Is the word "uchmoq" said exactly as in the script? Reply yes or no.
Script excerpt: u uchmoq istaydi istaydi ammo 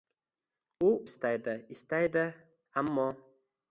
no